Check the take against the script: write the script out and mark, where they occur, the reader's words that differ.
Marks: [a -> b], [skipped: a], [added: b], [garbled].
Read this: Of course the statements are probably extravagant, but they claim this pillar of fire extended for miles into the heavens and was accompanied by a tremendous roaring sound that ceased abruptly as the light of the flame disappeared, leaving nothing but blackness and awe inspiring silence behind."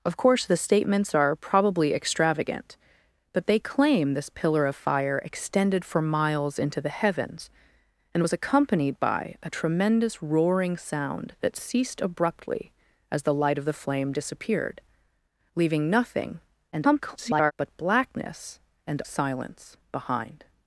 Of course the statements are probably extravagant, but they claim this pillar of fire extended for miles into the heavens and was accompanied by a tremendous roaring sound that ceased abruptly as the light of the flame disappeared, leaving nothing [garbled] but blackness and [skipped: awe inspiring] silence behind."